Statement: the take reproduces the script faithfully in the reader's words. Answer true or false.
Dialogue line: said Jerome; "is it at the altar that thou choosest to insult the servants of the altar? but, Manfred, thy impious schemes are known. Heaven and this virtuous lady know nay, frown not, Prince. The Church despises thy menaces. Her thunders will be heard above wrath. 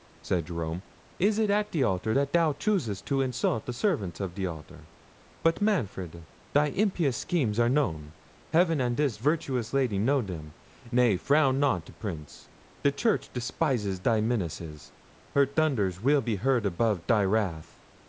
false